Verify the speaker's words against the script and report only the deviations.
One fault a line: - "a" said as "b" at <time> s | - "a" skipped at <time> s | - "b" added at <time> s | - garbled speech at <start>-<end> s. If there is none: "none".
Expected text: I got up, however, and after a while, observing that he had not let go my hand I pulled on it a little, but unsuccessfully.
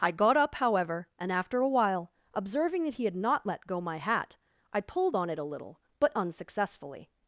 - "hand" said as "hat" at 4.0 s